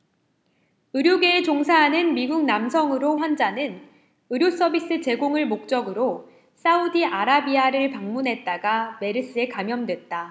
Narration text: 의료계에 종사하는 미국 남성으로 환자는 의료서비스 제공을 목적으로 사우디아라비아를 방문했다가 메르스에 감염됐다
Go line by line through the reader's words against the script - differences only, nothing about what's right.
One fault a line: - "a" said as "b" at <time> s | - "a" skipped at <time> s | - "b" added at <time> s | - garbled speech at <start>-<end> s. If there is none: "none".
none